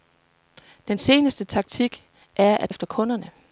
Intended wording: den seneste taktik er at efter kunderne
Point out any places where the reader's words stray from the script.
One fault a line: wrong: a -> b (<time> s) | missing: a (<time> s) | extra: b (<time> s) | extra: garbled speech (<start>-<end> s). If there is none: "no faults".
no faults